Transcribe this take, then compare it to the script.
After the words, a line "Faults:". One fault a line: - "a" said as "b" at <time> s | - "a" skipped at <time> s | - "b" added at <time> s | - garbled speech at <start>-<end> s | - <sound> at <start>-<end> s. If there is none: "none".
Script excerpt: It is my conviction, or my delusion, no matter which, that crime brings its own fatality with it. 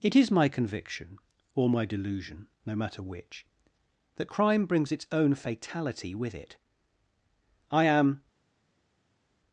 It is my conviction, or my delusion, no matter which, that crime brings its own fatality with it. I am
Faults:
- "I am" added at 7.7 s